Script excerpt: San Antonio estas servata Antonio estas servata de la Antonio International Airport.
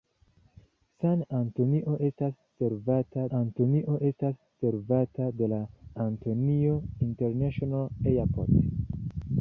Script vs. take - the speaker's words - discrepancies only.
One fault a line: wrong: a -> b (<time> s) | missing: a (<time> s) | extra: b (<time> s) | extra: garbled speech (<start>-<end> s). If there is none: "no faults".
no faults